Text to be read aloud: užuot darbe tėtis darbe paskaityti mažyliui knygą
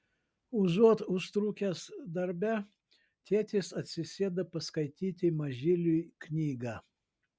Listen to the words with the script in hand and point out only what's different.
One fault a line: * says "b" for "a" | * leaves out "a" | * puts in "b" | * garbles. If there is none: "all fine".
* puts in "užtrukęs"
* says "atsisėda" for "darbe"